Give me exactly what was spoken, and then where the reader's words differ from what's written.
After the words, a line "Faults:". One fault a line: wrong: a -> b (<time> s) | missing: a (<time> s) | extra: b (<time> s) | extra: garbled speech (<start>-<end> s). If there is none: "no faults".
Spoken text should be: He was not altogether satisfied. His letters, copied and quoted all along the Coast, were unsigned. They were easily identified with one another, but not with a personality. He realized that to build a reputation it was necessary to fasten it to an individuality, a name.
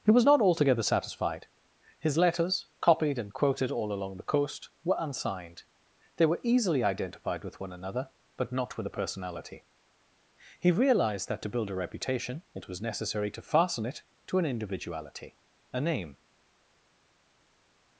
He was not altogether satisfied. His letters, copied and quoted all along the Coast, were unsigned. They were easily identified with one another, but not with a personality. He realized that to build a reputation it was necessary to fasten it to an individuality, a name.
Faults:
no faults